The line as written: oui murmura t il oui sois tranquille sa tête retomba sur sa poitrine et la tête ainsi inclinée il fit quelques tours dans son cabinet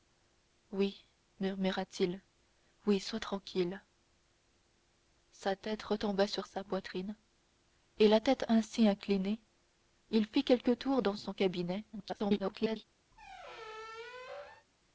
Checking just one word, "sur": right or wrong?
right